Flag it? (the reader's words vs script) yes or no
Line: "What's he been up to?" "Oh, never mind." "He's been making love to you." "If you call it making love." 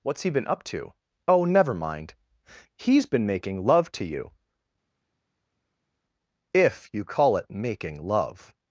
no